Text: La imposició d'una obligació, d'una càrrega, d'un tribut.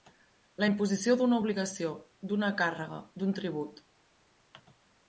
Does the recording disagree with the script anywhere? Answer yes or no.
no